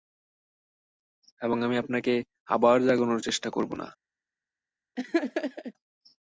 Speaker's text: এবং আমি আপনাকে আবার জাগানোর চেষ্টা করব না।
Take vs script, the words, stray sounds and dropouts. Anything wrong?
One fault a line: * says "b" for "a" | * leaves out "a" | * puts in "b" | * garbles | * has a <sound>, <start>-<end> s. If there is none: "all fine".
* has a laugh, 5.0-5.7 s